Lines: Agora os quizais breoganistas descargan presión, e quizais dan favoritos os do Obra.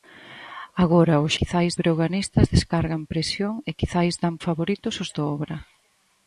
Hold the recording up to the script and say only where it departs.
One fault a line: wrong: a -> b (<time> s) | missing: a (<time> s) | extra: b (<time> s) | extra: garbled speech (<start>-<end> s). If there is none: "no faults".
no faults